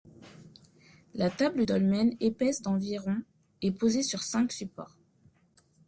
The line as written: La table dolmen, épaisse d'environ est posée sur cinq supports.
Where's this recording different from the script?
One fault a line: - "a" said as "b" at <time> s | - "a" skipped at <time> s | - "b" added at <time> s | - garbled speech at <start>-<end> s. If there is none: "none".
none